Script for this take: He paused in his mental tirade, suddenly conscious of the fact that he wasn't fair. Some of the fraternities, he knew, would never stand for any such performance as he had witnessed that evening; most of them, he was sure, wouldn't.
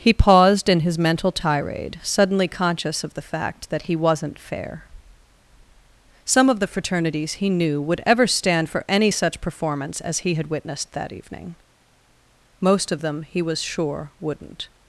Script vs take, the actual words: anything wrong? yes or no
yes